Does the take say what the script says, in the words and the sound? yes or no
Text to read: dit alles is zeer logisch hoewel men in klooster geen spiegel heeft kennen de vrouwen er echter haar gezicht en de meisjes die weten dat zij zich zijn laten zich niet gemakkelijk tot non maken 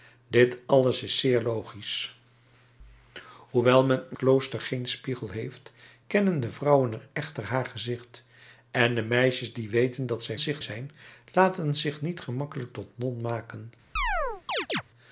no